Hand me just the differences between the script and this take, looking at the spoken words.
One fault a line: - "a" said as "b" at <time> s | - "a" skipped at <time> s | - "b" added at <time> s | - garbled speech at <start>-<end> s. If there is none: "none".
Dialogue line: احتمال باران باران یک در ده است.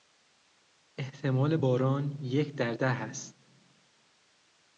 - "باران" skipped at 2.2 s